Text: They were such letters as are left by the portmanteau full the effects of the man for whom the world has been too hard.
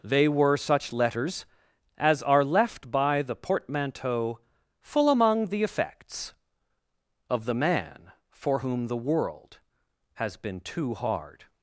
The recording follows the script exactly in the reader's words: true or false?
false